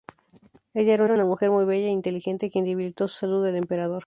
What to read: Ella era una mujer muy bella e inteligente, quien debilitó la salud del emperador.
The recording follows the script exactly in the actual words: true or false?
false